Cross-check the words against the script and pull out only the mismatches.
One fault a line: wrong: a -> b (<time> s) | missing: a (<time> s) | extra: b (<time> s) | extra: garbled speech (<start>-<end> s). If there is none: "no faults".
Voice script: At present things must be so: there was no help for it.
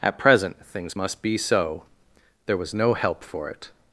no faults